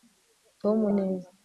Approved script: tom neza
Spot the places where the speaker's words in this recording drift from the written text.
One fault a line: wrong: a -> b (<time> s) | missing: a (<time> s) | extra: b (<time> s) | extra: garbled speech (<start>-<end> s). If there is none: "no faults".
no faults